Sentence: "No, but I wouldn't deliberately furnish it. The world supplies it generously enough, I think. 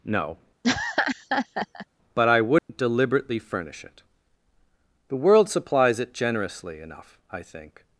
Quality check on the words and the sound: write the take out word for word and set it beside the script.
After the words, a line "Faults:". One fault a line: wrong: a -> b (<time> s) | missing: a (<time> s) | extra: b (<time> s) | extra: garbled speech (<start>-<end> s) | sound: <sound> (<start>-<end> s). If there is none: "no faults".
"No, but I wouldn't deliberately furnish it. The world supplies it generously enough, I think.
Faults:
sound: laugh (0.6-1.9 s)
sound: dropout (2.6-2.7 s)